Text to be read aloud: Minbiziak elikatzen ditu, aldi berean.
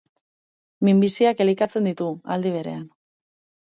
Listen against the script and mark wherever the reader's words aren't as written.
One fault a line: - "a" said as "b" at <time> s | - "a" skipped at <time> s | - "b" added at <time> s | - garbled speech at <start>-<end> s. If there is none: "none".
none